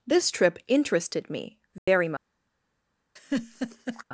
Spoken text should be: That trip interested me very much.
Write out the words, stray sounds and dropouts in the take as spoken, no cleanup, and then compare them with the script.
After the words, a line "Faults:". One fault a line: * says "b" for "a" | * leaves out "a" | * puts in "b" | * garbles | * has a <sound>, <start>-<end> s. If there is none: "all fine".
This trip interested me very much.
Faults:
* says "This" for "That"
* has a dropout, 1.8-1.9 s
* has a laugh, 3.2-4.0 s